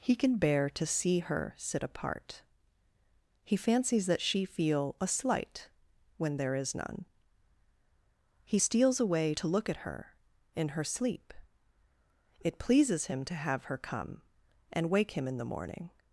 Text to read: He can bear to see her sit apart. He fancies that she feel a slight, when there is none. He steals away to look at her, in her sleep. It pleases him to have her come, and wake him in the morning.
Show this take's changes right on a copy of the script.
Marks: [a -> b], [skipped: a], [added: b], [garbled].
He can bear to see her sit apart. He fancies that she feel a slight, when there is none. He steals away to look at her, in her sleep. It pleases him to have her come, and wake him in the morning.